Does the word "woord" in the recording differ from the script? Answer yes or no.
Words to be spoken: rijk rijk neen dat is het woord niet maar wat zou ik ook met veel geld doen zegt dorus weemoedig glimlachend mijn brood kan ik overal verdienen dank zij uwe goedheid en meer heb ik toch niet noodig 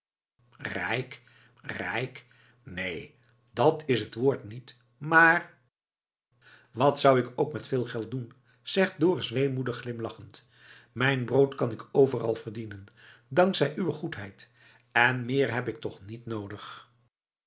no